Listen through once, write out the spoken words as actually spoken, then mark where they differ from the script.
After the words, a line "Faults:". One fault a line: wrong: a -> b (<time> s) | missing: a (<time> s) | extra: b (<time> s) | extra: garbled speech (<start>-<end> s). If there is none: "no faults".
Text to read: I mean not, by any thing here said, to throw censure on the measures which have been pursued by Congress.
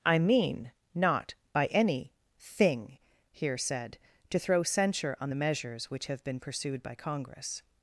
I mean not, by any thing here said, to throw censure on the measures which have been pursued by Congress.
Faults:
no faults